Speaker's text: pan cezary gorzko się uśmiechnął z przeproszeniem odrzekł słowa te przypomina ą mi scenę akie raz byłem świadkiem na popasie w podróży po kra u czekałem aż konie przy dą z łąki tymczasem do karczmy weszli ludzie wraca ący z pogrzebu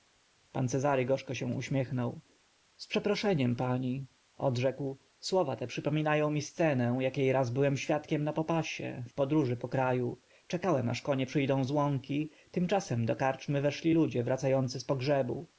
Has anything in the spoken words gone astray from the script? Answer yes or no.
yes